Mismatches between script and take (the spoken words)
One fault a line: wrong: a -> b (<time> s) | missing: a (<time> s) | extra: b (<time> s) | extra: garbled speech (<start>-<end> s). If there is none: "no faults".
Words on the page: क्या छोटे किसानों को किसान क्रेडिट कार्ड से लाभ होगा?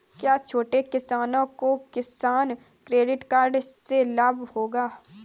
no faults